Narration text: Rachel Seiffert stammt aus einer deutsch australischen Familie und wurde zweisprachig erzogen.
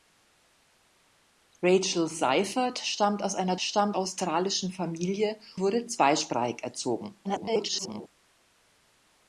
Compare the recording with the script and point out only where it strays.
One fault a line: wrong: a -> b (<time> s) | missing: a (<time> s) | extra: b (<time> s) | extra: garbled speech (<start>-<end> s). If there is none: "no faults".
wrong: deutsch -> stammt (3.5 s)
missing: und (5.4 s)
extra: garbled speech (7.2-8.1 s)